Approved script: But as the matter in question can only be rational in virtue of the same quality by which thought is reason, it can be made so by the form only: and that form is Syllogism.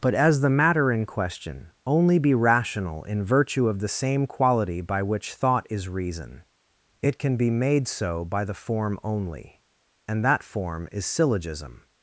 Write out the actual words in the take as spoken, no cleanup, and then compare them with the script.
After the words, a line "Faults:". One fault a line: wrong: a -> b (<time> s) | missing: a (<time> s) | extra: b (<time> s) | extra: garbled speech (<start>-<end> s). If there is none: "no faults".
But as the matter in question only be rational in virtue of the same quality by which thought is reason, it can be made so by the form only: and that form is Syllogism.
Faults:
missing: can (1.7 s)